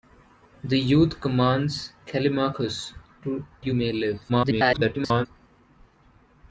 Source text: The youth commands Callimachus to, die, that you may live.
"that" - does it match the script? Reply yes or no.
no